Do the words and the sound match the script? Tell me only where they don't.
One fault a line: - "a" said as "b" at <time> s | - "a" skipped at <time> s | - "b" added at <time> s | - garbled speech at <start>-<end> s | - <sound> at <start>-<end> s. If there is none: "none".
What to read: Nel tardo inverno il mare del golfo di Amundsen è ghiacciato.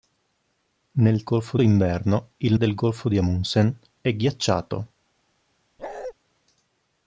- "tardo" said as "golfo" at 1.2 s
- "mare" skipped at 2.6 s
- bark at 5.8-6.1 s